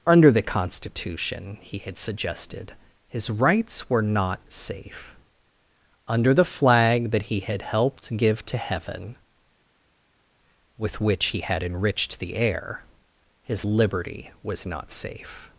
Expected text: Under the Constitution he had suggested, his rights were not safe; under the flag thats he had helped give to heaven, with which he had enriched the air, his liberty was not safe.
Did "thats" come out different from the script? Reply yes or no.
yes